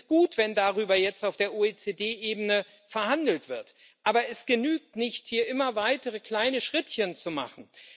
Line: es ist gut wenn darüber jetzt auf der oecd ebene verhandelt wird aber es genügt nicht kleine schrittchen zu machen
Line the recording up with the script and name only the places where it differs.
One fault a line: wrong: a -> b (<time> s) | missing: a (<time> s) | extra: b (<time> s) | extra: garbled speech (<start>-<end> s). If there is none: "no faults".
extra: hier immer weitere (5.3 s)